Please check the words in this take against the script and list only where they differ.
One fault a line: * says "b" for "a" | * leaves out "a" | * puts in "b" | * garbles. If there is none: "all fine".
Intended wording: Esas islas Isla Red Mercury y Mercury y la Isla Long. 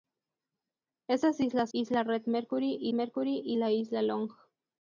all fine